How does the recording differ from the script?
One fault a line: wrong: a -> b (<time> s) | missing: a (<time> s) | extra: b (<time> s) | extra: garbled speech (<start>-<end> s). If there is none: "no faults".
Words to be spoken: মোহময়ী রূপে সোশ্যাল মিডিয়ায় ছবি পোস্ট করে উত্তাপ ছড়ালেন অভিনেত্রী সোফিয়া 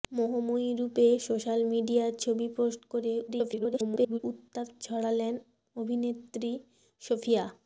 extra: garbled speech (3.3-4.2 s)